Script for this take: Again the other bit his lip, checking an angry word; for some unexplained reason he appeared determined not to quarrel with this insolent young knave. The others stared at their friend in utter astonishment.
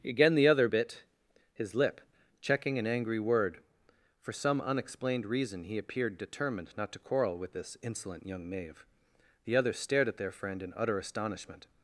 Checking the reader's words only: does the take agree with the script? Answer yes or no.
yes